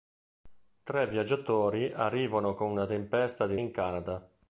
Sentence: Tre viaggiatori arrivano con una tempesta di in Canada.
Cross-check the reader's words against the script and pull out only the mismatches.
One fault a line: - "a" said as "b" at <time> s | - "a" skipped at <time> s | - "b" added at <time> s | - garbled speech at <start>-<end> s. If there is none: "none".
none